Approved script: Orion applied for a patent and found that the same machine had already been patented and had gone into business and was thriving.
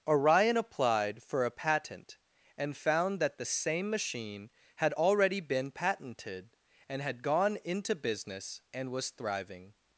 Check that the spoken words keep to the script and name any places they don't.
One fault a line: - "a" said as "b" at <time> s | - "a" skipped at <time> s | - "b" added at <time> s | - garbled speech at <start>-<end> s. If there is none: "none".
none